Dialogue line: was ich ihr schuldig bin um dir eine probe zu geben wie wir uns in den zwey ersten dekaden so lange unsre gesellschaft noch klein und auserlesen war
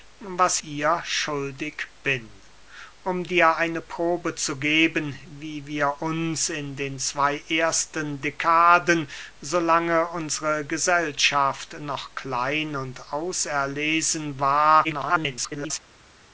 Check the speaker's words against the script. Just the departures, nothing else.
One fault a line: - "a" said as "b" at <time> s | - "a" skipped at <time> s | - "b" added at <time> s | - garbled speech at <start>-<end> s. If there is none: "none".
- "ich" skipped at 0.6 s
- garbled speech at 14.8-15.8 s